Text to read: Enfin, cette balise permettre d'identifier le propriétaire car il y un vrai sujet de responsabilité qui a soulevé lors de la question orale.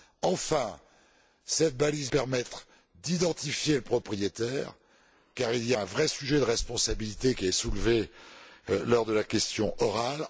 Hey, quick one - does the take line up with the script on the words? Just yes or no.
yes